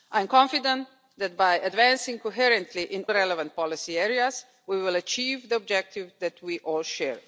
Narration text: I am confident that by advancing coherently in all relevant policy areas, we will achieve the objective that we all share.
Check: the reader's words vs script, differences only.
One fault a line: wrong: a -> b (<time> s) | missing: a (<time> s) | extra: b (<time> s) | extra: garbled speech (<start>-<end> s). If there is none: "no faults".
missing: all (3.0 s)